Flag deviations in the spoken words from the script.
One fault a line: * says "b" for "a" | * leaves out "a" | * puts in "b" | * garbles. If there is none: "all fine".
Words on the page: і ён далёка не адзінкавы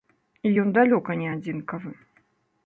all fine